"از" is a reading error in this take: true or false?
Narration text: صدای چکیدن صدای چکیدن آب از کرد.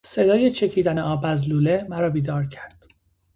true